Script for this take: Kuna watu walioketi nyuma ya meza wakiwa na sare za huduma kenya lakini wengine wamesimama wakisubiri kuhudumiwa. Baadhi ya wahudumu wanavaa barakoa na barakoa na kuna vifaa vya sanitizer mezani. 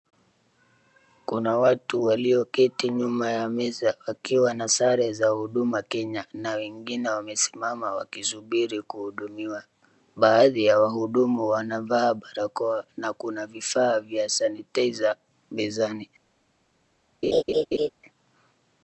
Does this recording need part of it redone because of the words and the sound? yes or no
yes